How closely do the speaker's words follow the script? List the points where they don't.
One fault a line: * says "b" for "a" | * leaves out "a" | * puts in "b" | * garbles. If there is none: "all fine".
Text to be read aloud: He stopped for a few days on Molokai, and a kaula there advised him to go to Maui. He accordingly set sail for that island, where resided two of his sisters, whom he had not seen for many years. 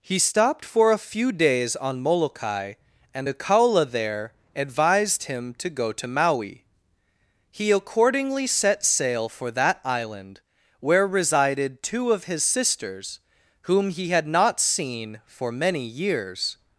all fine